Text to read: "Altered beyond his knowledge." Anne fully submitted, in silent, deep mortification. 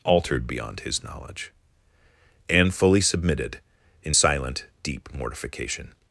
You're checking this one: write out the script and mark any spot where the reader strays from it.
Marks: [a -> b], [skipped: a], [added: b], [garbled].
"Altered beyond his knowledge." Anne fully submitted, in silent, deep mortification.